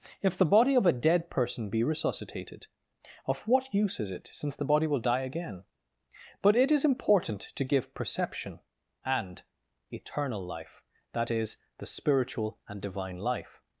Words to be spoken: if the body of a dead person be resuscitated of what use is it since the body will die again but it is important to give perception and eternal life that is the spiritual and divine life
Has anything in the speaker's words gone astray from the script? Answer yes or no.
no